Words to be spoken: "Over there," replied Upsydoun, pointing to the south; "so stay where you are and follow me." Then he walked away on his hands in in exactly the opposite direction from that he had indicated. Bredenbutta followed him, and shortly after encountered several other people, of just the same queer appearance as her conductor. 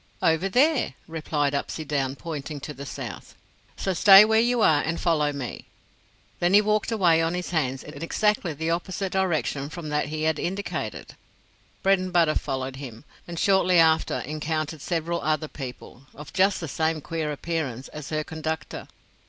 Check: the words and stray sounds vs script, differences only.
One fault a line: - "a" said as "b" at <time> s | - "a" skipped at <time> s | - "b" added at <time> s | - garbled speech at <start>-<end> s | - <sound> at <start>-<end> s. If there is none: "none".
none